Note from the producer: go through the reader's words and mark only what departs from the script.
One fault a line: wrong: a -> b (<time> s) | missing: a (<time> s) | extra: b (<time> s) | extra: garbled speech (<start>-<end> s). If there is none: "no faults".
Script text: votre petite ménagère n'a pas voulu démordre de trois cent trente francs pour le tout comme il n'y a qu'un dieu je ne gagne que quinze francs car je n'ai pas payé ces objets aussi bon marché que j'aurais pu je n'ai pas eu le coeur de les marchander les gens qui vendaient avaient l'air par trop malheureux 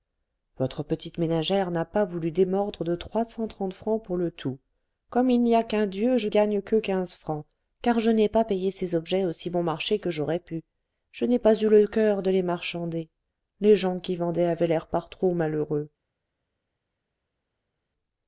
missing: ne (6.3 s)